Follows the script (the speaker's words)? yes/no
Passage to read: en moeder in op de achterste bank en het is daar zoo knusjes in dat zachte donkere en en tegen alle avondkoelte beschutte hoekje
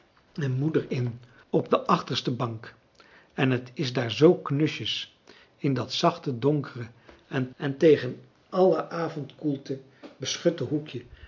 yes